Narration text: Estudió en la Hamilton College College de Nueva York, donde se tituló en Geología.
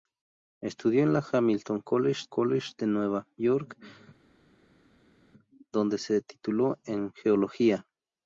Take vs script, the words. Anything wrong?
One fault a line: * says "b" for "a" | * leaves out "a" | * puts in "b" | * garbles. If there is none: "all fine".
all fine